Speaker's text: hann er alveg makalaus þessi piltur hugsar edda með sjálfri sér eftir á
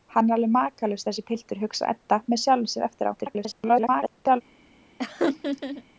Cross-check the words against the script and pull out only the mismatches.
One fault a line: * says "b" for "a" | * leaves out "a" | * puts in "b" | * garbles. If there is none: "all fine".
* garbles